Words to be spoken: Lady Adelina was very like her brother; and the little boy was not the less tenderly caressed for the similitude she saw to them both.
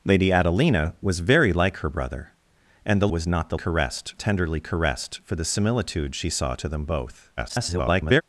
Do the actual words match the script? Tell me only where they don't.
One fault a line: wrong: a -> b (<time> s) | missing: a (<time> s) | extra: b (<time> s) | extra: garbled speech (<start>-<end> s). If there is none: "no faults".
missing: little boy (3.1 s)
wrong: less -> caressed (3.5 s)
extra: garbled speech (7.4-8.2 s)